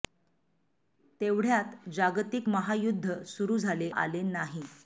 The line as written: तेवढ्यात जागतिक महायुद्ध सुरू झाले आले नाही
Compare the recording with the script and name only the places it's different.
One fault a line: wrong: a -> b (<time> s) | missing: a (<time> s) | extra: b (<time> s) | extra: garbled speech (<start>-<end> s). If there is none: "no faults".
no faults